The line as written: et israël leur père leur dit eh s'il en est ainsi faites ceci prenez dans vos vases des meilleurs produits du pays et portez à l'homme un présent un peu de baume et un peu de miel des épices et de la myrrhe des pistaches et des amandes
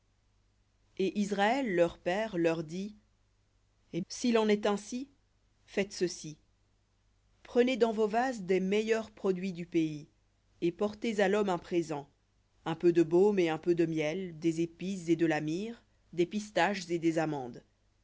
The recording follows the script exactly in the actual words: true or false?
true